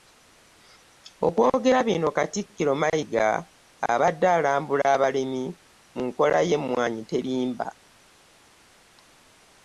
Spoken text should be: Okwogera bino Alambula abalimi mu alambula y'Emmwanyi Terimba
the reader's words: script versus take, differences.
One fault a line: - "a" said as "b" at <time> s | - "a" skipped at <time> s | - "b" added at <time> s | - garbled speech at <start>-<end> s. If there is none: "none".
- "Katikkiro Mayiga abadde" added at 2.2 s
- "alambula" said as "nkola" at 6.1 s